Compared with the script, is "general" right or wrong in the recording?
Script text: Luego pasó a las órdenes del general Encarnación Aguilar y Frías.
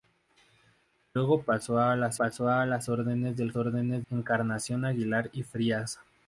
wrong